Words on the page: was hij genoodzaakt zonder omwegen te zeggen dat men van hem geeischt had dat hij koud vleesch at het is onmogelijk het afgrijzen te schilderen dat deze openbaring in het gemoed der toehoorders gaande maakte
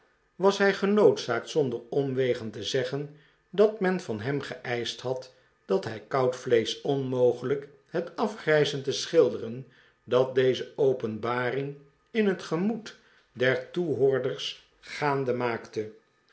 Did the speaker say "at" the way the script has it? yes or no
no